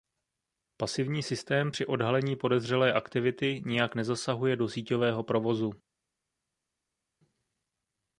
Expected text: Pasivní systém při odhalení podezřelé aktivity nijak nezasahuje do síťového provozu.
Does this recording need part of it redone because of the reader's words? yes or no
no